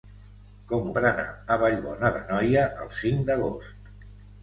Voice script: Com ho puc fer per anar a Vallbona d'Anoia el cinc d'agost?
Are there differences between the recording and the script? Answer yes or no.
yes